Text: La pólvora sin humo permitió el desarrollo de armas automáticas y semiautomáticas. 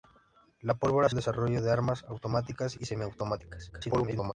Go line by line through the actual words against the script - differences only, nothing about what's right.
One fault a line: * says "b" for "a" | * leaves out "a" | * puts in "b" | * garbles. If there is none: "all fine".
* leaves out "sin humo permitió"
* garbles